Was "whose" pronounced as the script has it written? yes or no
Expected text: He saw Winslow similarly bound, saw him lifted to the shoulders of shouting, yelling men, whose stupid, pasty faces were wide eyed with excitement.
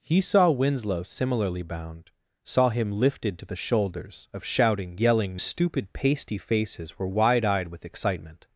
no